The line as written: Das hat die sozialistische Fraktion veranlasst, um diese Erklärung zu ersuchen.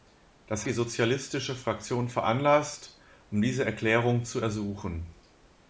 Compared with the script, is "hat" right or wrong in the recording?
wrong